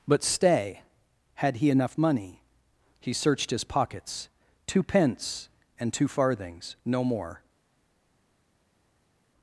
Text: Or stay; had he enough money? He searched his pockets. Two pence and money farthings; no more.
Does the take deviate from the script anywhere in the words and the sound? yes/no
yes